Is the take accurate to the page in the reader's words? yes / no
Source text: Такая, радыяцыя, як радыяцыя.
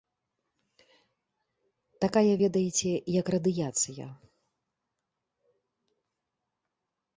no